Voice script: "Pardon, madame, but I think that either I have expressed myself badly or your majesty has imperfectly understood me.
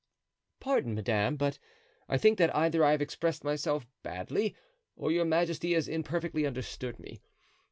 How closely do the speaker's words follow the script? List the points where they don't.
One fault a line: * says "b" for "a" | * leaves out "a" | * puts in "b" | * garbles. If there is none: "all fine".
all fine